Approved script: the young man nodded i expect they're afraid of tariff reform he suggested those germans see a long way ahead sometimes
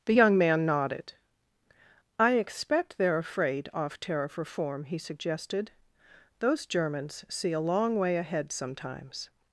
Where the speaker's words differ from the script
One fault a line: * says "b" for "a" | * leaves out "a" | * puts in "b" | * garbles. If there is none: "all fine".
* says "off" for "of"